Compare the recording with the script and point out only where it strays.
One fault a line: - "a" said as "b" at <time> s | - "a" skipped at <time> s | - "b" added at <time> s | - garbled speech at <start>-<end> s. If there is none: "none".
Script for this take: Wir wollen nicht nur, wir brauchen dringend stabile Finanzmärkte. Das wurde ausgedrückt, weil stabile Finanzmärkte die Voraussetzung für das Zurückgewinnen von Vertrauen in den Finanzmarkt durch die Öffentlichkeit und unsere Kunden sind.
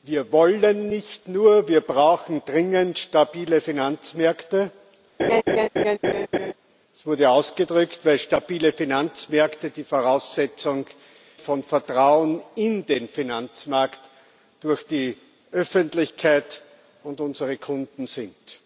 - "für das Zurückgewinnen" skipped at 10.9 s